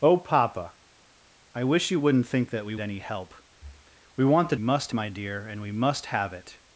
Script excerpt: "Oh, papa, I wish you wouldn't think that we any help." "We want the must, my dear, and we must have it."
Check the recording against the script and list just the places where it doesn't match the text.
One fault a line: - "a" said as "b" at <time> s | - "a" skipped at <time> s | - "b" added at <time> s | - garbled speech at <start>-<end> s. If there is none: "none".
none